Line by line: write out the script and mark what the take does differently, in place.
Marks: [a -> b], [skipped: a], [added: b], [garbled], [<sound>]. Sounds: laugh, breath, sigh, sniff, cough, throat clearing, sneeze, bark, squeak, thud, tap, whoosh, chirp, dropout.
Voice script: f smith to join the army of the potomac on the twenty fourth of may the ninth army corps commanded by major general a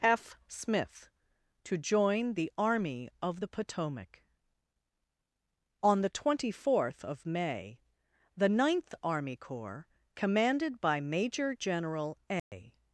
f smith to join the army of the potomac on the twenty fourth of may the ninth army corps commanded by major general a [dropout]